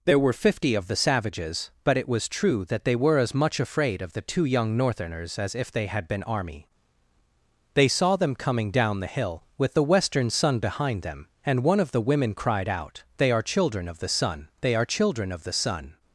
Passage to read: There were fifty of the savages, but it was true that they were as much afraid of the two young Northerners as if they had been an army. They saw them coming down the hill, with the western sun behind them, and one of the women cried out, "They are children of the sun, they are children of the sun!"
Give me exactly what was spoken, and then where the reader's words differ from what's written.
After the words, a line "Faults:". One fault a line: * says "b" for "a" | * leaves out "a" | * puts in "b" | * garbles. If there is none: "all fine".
There were fifty of the savages, but it was true that they were as much afraid of the two young Northerners as if they had been army. They saw them coming down the hill, with the western sun behind them, and one of the women cried out, "They are children of the sun, they are children of the sun!"
Faults:
* leaves out "an"